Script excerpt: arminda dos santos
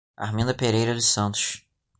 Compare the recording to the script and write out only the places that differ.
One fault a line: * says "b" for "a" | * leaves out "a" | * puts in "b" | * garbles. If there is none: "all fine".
* puts in "pereira"